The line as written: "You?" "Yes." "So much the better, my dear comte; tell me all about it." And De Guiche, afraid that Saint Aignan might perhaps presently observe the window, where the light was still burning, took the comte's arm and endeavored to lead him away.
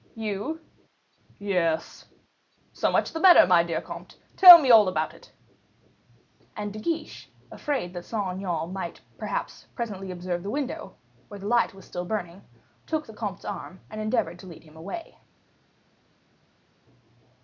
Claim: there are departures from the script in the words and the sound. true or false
false